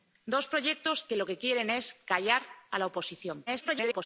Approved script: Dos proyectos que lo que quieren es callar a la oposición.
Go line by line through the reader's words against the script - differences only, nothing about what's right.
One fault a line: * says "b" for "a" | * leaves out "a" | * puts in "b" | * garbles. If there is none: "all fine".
* garbles